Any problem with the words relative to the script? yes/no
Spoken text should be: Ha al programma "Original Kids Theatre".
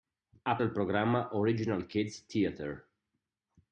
no